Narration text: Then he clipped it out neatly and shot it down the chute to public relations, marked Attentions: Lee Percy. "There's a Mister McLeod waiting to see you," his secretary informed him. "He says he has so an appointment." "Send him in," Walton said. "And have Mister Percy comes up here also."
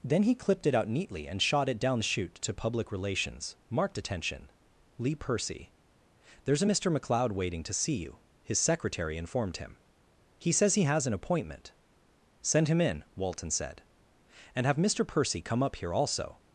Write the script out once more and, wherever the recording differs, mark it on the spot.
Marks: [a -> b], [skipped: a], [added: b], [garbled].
Then he clipped it out neatly and shot it down the chute to public relations, marked [Attentions: -> Attention] Lee Percy. "There's a Mister McLeod waiting to see you," his secretary informed him. "He says he has [skipped: so] an appointment." "Send him in," Walton said. "And have Mister Percy [comes -> come] up here also."